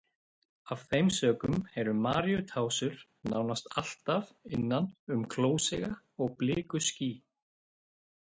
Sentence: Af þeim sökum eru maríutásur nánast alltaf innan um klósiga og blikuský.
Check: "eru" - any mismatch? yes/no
no